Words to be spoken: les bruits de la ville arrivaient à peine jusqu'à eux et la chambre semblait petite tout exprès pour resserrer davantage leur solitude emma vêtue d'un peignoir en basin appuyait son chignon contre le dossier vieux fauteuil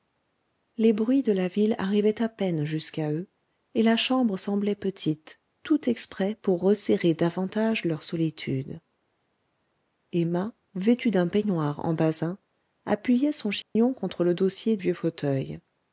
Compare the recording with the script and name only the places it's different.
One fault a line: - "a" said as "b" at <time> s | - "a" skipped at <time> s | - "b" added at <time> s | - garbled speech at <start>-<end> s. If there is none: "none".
none